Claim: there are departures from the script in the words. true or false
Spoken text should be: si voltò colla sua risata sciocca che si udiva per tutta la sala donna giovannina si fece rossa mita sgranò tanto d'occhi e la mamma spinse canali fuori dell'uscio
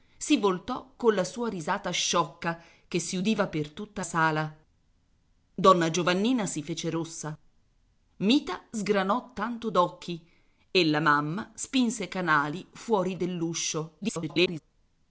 true